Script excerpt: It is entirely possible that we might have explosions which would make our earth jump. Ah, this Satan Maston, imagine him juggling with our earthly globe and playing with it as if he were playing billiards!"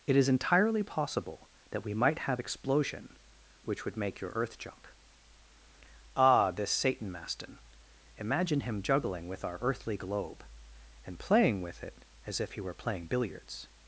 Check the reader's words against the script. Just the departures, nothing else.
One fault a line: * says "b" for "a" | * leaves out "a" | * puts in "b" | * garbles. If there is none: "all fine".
* says "explosion" for "explosions"
* says "your" for "our"